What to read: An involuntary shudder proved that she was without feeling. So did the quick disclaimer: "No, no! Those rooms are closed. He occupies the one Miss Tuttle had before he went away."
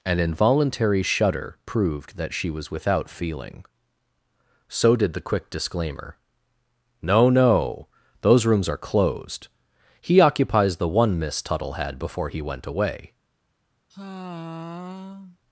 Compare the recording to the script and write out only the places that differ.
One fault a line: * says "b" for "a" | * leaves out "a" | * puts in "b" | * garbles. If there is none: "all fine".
all fine